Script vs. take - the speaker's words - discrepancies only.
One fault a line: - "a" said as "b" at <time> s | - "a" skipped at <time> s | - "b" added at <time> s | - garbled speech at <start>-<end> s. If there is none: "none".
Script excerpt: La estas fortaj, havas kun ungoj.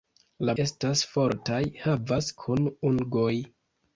none